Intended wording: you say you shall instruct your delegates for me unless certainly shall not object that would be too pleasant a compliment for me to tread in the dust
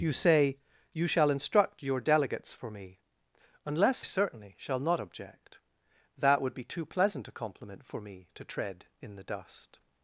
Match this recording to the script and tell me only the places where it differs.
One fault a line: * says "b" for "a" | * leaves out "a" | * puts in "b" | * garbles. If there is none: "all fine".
all fine